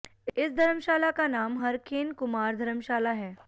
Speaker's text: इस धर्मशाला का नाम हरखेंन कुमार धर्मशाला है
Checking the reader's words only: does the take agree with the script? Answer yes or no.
yes